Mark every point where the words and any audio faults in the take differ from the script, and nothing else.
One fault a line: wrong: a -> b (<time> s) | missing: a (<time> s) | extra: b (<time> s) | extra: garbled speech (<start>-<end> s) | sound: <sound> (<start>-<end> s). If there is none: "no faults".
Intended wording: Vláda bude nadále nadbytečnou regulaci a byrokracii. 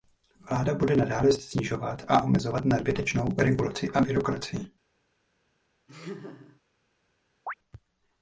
extra: snižovat a omezovat (1.3 s)
sound: laugh (5.9-6.6 s)
sound: chirp (7.5-7.5 s)